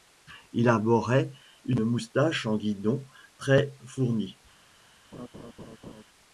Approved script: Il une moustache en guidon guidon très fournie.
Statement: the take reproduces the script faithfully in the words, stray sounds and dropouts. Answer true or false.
false